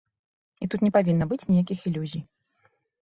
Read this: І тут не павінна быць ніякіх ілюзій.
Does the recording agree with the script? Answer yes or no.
yes